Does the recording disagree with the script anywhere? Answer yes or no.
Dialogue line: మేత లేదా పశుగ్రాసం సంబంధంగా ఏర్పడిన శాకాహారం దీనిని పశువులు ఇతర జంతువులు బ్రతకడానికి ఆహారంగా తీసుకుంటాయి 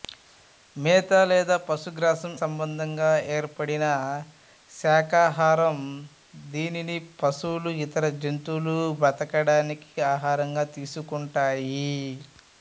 no